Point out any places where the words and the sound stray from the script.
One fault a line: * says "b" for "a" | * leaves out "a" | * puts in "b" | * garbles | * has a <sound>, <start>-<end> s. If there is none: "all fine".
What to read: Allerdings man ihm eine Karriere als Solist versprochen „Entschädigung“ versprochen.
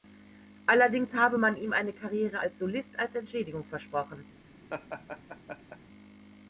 * puts in "habe"
* says "als" for "versprochen"
* has a laugh, 4.7-5.8 s